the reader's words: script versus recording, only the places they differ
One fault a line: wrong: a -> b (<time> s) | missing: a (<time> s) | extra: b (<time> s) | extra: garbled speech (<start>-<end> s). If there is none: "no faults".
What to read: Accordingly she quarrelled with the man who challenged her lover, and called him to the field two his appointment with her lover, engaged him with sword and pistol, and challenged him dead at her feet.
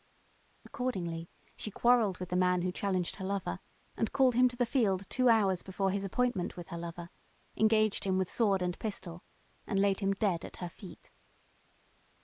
extra: hours before (5.3 s)
wrong: challenged -> laid (9.8 s)